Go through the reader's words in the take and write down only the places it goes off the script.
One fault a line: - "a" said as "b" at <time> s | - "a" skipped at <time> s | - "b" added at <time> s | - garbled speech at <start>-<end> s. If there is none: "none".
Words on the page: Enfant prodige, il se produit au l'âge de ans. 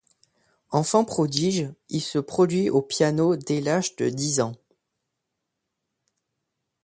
- "piano dès" added at 2.8 s
- "dix" added at 4.1 s